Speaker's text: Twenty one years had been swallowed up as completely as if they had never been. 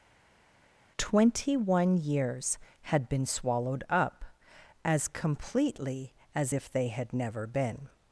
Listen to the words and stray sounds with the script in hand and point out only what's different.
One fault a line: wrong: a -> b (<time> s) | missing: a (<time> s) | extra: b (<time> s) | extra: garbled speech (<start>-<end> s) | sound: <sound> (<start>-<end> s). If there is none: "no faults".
no faults